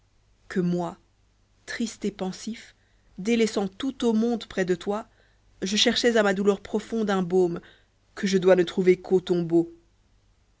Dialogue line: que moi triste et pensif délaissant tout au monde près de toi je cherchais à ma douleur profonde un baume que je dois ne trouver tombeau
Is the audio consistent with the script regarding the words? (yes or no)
no